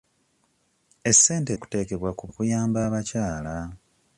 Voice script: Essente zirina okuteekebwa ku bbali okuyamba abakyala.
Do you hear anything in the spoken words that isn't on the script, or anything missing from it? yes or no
yes